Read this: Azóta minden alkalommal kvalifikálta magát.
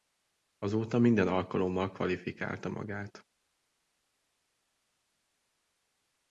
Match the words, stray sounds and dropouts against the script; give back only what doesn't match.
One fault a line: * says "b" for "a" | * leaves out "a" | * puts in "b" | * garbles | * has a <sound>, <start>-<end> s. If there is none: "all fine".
all fine